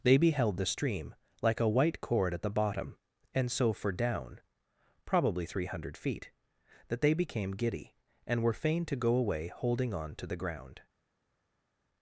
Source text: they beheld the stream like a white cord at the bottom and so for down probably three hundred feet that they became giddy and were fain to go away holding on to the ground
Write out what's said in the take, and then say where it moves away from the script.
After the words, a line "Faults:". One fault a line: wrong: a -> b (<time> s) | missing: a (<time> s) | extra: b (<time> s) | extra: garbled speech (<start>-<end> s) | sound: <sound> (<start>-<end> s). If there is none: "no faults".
they beheld the stream like a white cord at the bottom and so for down probably three hundred feet that they became giddy and were fain to go away holding on to the ground
Faults:
no faults